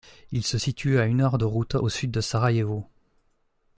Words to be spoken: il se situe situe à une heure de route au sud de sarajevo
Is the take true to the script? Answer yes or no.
no